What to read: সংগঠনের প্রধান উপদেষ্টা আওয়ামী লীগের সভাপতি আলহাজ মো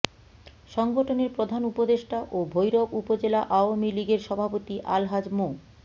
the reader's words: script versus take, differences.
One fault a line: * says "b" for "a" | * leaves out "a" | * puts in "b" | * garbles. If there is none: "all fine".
* puts in "ও ভৈরব উপজেলা"